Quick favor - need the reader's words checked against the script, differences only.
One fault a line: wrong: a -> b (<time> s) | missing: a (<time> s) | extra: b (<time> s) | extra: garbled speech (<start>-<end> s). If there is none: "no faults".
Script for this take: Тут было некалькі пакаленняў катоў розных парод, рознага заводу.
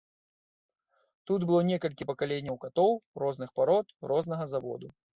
no faults